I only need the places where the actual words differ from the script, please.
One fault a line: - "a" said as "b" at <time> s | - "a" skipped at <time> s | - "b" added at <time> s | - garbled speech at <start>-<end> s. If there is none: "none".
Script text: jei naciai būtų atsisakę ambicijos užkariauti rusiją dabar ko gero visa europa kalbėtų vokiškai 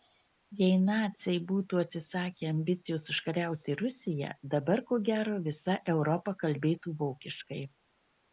none